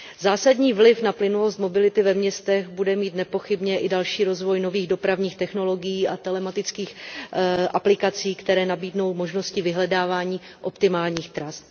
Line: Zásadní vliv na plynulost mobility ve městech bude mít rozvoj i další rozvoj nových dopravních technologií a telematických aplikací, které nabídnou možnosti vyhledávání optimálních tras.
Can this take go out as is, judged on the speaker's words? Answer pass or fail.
fail